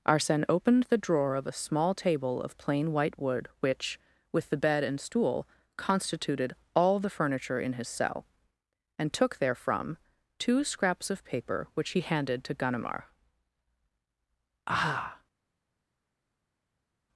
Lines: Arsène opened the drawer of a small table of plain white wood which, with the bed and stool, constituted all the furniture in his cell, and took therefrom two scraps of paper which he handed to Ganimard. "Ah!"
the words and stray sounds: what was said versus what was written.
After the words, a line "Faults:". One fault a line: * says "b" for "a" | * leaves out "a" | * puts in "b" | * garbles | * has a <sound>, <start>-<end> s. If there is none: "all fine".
Arsène opened the drawer of a small table of plain white wood which, with the bed and stool, constituted all the furniture in his cell, and took therefrom two scraps of paper which he handed to Ganimard. "Ah!"
Faults:
all fine